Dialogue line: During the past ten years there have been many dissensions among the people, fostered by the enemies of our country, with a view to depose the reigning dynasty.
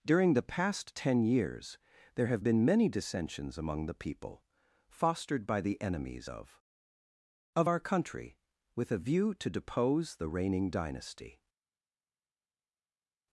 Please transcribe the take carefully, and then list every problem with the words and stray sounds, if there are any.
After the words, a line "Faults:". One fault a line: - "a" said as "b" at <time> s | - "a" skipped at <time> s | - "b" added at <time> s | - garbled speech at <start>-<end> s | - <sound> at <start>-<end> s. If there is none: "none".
During the past ten years there have been many dissensions among the people, fostered by the enemies of of our country, with a view to depose the reigning dynasty.
Faults:
- "of" added at 7.6 s